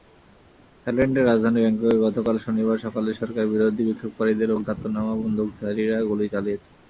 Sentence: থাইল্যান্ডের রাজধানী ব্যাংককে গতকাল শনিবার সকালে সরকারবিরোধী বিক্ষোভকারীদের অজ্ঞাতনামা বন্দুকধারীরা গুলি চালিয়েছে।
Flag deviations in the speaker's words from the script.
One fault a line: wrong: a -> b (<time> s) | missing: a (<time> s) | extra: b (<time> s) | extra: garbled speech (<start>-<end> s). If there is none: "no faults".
no faults